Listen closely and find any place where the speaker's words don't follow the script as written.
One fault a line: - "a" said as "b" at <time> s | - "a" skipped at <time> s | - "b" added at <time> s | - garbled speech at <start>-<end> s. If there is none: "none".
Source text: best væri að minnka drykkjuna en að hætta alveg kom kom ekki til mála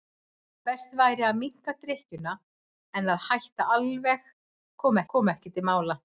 none